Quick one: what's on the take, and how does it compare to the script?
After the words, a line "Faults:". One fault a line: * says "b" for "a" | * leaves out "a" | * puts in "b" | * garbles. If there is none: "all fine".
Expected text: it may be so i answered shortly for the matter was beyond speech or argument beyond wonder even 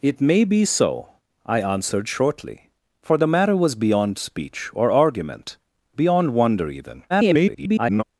it may be so i answered shortly for the matter was beyond speech or argument beyond wonder even [garbled]
Faults:
* garbles